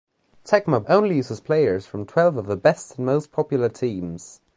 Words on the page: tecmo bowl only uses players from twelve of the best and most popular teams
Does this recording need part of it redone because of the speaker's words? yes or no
yes